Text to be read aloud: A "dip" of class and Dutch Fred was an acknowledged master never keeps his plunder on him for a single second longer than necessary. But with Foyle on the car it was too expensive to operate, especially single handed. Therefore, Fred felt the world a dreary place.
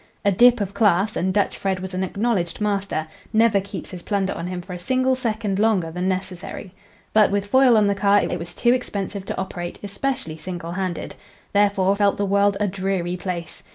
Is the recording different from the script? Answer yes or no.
yes